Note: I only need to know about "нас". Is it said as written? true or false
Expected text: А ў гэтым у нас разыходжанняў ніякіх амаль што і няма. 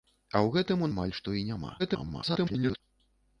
false